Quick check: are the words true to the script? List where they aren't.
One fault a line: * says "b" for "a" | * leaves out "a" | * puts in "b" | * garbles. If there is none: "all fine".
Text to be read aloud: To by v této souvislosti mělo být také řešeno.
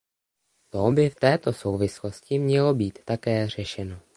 all fine